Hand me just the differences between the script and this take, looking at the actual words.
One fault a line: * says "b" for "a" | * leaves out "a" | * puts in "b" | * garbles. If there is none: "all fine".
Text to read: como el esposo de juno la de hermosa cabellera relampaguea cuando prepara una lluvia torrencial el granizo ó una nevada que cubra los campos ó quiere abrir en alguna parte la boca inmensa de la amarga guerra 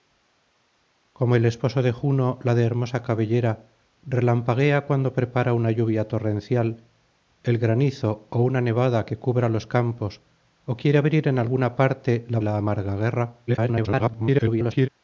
* leaves out "boca inmensa de"
* garbles